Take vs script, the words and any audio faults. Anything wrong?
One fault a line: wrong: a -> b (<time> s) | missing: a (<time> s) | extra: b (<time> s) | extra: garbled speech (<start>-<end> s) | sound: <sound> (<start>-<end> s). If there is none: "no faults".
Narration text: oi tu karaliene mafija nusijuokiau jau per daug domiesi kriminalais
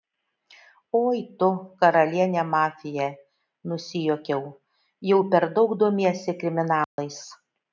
sound: dropout (6.8-7.0 s)